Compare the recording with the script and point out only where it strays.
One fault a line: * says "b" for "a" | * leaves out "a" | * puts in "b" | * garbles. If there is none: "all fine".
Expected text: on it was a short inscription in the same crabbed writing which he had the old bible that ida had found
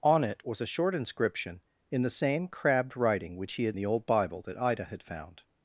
all fine